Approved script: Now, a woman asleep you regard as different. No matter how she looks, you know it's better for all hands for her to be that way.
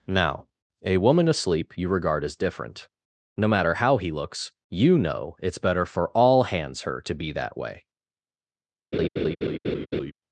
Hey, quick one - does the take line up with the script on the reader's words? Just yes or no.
no